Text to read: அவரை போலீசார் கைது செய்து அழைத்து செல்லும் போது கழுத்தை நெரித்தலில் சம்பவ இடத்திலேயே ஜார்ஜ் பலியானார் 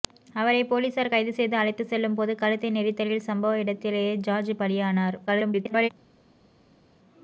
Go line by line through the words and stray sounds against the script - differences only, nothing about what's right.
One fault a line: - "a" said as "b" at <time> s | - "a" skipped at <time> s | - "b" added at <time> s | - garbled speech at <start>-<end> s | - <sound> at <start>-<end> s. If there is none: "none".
- garbled speech at 5.3-5.9 s